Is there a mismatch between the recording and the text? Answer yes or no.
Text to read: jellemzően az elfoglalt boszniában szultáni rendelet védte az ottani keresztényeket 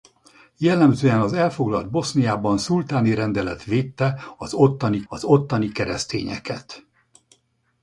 yes